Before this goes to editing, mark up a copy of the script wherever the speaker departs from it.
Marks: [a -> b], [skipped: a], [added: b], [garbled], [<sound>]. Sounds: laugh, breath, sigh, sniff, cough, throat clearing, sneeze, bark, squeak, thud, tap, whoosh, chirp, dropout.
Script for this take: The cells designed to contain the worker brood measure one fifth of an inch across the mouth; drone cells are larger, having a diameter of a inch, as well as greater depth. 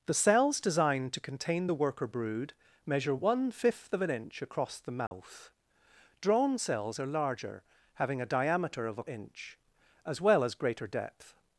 The cells designed to contain the worker brood measure one fifth of an inch across the mouth; [dropout] drone cells are larger, having a diameter of a inch, as well as greater depth.